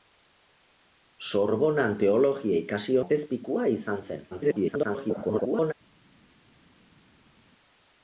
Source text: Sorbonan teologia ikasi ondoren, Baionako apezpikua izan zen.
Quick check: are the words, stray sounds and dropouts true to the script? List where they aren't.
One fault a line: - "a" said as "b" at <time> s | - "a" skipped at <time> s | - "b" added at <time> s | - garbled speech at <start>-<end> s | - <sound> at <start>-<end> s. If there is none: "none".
- "ondoren Baionako" skipped at 3.0 s
- garbled speech at 4.3-5.7 s